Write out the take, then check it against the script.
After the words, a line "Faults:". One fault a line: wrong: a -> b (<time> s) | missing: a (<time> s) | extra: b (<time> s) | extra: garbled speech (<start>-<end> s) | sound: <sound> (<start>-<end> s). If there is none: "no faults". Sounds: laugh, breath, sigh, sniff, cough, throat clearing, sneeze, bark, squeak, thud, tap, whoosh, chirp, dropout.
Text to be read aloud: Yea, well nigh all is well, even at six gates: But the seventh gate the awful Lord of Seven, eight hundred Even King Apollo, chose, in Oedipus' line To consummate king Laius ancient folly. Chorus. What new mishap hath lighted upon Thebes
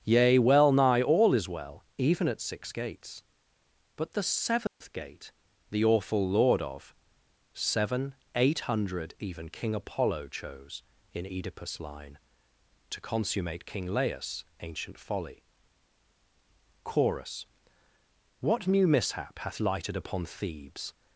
Yea, well nigh all is well, even at six gates: But the seventh gate the awful Lord of Seven, eight hundred Even King Apollo, chose, in Oedipus' line To consummate king Laius ancient folly. Chorus. What new mishap hath lighted upon Thebes
Faults:
sound: dropout (4.7-4.8 s)